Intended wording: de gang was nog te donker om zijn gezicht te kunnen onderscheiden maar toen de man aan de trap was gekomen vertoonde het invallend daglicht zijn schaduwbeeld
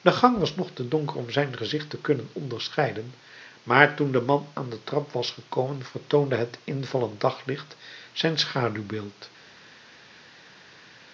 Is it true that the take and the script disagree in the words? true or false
false